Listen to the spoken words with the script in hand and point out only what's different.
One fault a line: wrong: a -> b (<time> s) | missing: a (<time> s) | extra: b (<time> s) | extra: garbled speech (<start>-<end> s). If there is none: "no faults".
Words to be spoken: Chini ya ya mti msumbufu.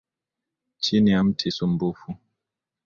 missing: ya (1.2 s)